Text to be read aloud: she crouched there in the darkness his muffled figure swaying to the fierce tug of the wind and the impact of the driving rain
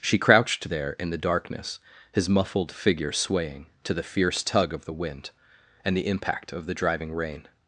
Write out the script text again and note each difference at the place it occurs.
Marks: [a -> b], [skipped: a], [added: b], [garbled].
she crouched there in the darkness his muffled figure swaying to the fierce tug of the wind and the impact of the driving rain